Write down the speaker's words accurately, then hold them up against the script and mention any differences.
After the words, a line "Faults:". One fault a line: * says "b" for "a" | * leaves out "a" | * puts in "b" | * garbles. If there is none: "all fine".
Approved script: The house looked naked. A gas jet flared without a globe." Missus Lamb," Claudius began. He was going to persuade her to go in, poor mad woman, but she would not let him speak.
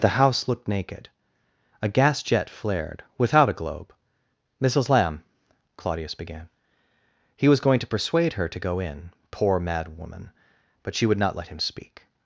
The house looked naked. A gas jet flared without a globe." Missus Lamb," Claudius began. He was going to persuade her to go in, poor mad woman, but she would not let him speak.
Faults:
all fine